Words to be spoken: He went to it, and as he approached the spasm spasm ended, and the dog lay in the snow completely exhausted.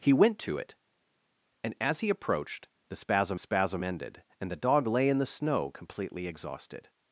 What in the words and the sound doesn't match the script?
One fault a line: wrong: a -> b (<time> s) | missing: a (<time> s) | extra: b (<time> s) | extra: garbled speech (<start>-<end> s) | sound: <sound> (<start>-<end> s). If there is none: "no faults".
no faults